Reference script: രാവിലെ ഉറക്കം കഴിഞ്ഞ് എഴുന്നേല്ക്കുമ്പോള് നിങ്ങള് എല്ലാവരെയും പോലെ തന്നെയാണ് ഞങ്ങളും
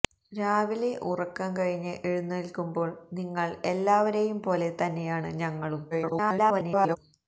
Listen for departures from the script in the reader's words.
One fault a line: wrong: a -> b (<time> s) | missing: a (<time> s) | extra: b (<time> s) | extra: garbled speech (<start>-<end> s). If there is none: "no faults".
extra: garbled speech (5.9-7.0 s)